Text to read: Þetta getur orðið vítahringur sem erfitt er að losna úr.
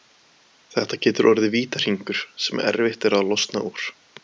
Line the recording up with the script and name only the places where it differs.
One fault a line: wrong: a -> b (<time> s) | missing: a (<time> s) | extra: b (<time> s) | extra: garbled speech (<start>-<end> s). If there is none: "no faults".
no faults